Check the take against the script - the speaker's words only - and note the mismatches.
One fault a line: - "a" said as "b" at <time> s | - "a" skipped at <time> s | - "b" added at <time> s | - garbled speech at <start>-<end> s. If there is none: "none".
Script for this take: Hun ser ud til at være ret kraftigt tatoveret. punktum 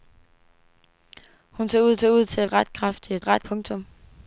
- "ser ud" added at 2.0 s
- "være" skipped at 2.5 s
- "tatoveret" said as "ret" at 3.2 s